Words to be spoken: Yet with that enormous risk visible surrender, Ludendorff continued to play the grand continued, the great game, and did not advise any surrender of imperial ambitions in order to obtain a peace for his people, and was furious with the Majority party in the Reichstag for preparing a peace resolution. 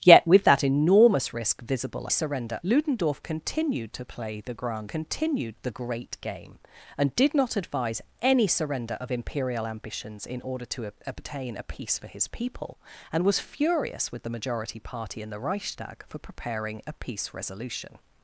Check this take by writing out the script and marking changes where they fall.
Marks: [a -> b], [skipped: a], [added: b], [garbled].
Yet with that enormous risk visible surrender, Ludendorff continued to play the grand continued, the great game, and did not advise any surrender of imperial ambitions in order to obtain a peace for his people, and was furious with the Majority party in the Reichstag for preparing a peace resolution.